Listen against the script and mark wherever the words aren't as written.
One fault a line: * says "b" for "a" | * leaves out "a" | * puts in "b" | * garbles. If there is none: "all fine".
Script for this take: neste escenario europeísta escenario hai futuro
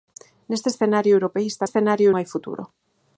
all fine